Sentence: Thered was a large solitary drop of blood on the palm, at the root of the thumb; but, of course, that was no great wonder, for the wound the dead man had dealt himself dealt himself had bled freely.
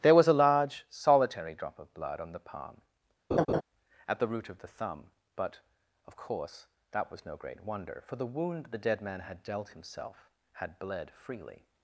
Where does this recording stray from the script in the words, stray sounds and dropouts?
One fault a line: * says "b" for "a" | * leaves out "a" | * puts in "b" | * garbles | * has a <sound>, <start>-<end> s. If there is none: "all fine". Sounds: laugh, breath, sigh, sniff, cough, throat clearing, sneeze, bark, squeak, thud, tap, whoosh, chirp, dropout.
* says "There" for "Thered"
* has a laugh, 3.3-3.6 s
* leaves out "dealt himself"